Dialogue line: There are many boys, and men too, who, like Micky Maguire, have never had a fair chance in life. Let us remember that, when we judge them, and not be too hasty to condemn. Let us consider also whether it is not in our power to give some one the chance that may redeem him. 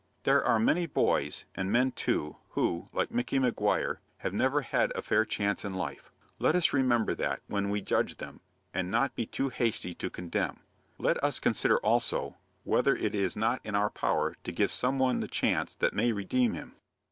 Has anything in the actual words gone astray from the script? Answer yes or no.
no